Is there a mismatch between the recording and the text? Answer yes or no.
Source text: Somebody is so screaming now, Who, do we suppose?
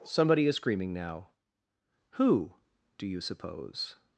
yes